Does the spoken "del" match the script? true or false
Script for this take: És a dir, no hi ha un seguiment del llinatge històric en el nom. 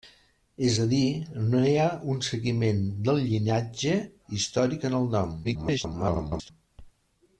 true